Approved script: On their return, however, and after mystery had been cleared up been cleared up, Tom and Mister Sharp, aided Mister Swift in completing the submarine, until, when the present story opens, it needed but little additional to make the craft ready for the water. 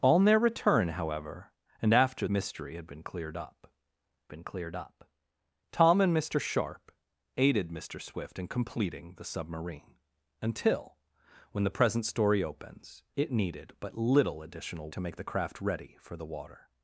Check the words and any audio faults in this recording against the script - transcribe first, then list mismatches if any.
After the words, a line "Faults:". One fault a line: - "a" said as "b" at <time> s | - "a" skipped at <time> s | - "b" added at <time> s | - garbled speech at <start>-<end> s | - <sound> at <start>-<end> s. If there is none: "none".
On their return, however, and after mystery had been cleared up been cleared up, Tom and Mister Sharp, aided Mister Swift in completing the submarine, until, when the present story opens, it needed but little additional to make the craft ready for the water.
Faults:
none